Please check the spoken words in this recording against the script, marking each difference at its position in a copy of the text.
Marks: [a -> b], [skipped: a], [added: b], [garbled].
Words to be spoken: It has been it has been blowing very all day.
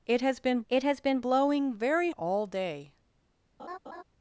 It has been it has been blowing very all day.